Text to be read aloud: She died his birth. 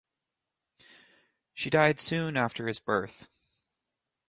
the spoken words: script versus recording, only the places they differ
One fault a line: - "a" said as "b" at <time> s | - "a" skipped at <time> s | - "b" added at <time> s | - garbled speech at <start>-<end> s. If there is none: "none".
- "soon after" added at 2.0 s